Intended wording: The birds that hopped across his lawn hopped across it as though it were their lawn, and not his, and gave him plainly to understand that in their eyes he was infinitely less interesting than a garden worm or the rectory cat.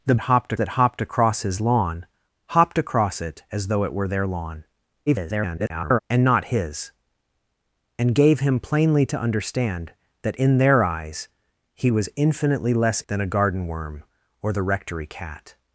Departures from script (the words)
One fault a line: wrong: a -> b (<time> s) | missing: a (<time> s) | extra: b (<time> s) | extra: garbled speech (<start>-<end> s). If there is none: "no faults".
wrong: birds -> hopped (0.2 s)
extra: garbled speech (5.1-6.0 s)
missing: interesting (13.0 s)